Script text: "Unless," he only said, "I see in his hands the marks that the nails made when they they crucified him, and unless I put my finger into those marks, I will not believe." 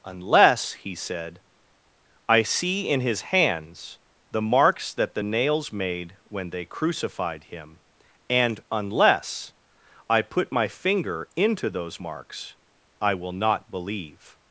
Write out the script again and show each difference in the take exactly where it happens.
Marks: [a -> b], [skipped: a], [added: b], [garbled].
"Unless," he [skipped: only] said, "I see in his hands the marks that the nails made when they [skipped: they] crucified him, and unless I put my finger into those marks, I will not believe."